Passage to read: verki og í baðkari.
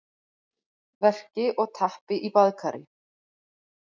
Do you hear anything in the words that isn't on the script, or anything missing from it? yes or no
yes